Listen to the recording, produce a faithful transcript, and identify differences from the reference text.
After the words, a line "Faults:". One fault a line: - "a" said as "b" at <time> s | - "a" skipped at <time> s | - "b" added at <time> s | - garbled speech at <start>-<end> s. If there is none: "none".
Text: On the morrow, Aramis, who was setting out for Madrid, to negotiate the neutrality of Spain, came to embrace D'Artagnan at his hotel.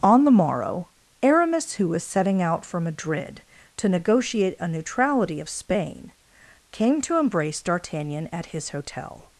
On the morrow, Aramis, who was setting out for Madrid, to negotiate a neutrality of Spain, came to embrace D'Artagnan at his hotel.
Faults:
- "the" said as "a" at 4.6 s